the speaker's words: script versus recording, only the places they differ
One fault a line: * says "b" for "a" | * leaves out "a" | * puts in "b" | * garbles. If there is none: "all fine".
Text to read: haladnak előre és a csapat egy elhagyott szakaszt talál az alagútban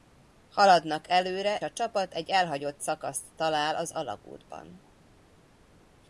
* leaves out "és"